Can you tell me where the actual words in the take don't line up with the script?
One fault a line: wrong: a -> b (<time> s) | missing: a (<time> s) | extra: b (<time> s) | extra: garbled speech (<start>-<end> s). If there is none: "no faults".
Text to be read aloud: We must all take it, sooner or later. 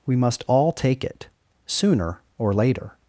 no faults